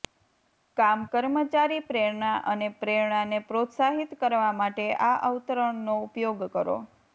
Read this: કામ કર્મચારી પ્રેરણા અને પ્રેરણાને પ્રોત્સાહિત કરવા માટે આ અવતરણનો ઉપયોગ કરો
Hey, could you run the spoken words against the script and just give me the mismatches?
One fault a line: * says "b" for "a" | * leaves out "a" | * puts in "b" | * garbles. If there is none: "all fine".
all fine